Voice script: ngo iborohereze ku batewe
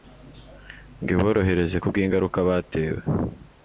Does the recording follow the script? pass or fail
fail